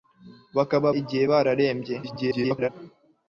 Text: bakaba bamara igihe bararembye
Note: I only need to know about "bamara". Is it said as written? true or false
false